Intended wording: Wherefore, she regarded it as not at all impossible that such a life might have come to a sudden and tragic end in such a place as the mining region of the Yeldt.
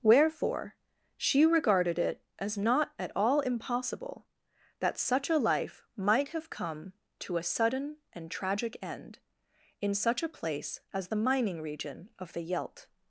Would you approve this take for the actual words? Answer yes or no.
yes